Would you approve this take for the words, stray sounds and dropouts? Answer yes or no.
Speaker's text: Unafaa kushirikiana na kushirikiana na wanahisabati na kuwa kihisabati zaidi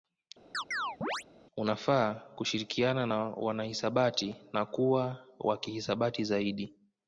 no